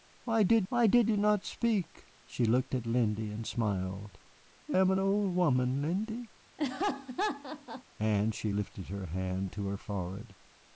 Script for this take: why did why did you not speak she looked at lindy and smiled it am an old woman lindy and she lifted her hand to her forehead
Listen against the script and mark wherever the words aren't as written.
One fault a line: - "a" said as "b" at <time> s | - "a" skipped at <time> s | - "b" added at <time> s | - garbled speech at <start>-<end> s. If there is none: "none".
none